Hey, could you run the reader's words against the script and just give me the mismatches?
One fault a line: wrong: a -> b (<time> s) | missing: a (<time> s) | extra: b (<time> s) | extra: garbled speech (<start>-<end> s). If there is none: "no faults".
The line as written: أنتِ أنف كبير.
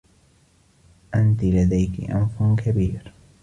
extra: لديكِ (1.4 s)